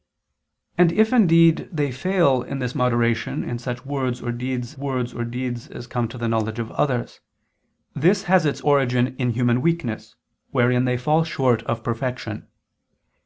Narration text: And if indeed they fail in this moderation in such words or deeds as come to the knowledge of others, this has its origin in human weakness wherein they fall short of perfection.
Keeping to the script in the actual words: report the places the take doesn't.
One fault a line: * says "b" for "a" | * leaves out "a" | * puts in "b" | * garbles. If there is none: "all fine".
* puts in "words or deeds"